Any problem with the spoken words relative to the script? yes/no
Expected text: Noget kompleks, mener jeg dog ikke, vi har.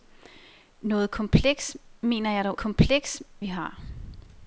yes